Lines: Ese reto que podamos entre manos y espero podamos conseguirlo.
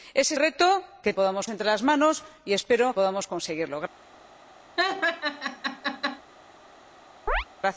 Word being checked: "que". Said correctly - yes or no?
yes